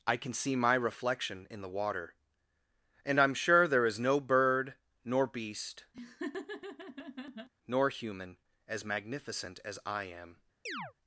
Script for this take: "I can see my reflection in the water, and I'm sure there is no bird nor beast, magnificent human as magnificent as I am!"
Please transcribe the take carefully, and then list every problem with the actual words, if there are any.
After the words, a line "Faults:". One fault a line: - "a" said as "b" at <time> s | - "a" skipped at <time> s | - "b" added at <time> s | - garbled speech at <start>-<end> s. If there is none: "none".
"I can see my reflection in the water, and I'm sure there is no bird nor beast, nor human as magnificent as I am!"
Faults:
- "magnificent" said as "nor" at 7.7 s